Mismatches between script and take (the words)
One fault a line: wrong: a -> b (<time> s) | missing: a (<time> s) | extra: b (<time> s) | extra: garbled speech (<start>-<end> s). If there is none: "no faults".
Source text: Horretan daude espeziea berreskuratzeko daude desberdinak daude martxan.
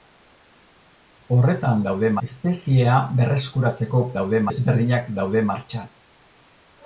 no faults